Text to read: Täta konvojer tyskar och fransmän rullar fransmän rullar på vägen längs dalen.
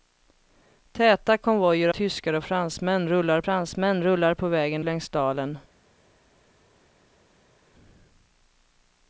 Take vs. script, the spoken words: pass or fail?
pass